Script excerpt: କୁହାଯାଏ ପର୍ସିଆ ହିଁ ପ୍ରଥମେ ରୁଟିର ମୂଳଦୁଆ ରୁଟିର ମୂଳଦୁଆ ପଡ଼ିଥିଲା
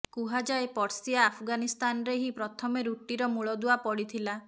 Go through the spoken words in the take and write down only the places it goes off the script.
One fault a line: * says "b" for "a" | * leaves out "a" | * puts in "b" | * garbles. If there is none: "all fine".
* puts in "ଆଫଗାନିସ୍ତାନରେ"
* leaves out "ରୁଟିର ମୂଳଦୁଆ"